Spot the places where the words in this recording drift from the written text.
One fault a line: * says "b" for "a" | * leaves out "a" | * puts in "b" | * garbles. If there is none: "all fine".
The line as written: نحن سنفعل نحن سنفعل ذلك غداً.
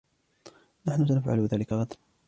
* leaves out "نحن سنفعل"